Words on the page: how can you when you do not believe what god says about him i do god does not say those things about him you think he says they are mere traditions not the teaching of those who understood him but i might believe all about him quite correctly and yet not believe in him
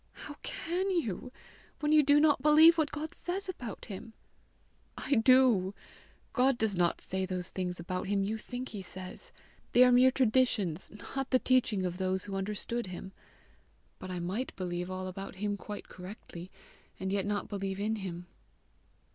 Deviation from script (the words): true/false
false